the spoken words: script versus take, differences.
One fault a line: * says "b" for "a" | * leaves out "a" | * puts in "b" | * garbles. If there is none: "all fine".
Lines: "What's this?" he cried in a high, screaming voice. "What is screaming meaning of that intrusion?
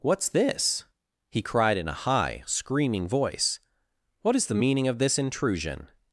* says "the" for "screaming"
* says "this" for "that"